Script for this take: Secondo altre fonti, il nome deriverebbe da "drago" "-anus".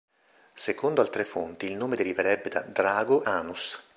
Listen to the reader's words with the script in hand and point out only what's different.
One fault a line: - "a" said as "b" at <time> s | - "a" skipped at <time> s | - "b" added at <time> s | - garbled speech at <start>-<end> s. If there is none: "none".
none